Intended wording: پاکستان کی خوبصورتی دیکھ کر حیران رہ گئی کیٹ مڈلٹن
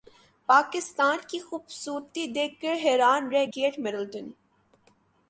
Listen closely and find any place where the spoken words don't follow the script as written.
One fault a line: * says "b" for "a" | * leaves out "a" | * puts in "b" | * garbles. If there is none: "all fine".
* leaves out "گئی"